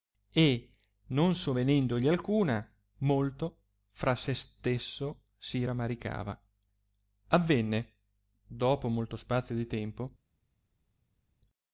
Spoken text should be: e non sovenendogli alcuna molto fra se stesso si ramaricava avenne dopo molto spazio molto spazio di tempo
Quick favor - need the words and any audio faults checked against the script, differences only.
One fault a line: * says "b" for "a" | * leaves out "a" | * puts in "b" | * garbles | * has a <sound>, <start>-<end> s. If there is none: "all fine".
* leaves out "molto spazio"